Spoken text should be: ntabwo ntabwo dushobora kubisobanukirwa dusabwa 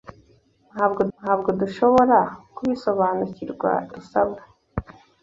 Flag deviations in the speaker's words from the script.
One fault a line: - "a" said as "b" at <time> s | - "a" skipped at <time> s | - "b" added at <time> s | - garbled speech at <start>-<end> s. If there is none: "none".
none